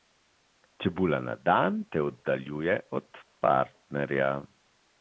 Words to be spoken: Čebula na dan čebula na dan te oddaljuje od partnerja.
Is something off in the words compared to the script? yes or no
yes